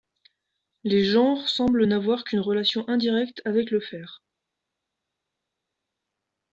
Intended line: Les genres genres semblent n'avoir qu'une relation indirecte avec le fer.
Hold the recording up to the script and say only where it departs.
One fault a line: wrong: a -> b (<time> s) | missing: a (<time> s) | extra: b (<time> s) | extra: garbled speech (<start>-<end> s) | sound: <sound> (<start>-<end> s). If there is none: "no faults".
missing: genres (1.5 s)